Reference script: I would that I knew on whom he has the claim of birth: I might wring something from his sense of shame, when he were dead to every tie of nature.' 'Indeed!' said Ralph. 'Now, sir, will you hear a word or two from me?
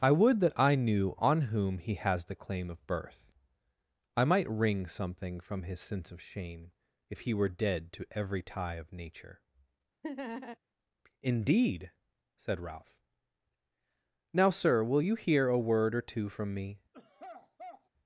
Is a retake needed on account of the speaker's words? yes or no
yes